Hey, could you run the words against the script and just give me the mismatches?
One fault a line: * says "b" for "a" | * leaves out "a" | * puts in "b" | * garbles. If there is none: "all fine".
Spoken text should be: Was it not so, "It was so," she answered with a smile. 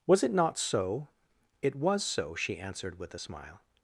all fine